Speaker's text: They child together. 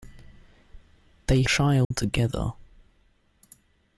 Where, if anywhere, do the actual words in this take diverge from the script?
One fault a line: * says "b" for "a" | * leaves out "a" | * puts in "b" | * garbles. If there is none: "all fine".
all fine